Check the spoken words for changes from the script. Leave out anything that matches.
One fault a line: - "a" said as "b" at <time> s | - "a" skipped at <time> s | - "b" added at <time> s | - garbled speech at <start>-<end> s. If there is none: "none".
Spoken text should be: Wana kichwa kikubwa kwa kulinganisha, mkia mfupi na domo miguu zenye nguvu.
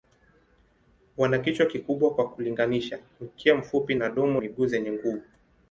none